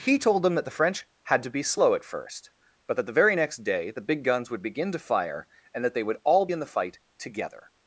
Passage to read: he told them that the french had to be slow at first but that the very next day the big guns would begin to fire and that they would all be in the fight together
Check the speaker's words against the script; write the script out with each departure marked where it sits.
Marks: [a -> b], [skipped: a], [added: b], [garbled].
he told them that the french had to be slow at first but that the very next day the big guns would begin to fire and that they would all [skipped: be] in the fight together